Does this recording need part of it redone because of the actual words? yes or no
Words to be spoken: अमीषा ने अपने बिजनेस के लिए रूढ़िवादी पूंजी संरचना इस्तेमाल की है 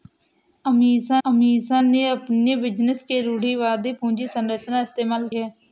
yes